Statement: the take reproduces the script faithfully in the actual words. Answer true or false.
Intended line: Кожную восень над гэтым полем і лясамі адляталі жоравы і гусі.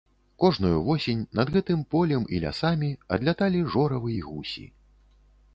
true